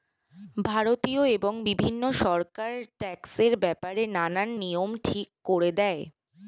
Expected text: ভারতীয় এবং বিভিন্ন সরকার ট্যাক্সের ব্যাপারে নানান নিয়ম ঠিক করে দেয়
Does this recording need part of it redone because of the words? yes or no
no